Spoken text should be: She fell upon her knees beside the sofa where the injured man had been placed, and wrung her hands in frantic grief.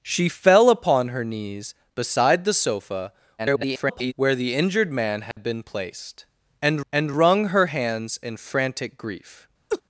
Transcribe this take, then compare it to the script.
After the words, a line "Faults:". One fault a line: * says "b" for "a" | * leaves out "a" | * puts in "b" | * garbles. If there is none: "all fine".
She fell upon her knees beside the sofa [garbled] where the injured man had been placed, and and wrung her hands in frantic grief.
Faults:
* garbles
* puts in "and"